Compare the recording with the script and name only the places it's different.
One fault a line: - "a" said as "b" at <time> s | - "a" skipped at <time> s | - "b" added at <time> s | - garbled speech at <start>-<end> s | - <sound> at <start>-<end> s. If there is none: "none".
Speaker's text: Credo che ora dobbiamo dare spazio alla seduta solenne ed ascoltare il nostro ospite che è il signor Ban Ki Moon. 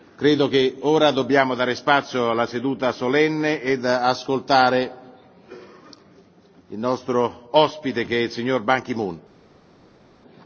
none